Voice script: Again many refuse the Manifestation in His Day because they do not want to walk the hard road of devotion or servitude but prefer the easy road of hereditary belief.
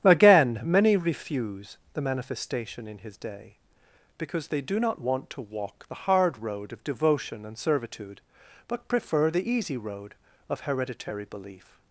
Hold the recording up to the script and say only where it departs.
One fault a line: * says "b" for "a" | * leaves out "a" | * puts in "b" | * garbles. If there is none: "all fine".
* says "and" for "or"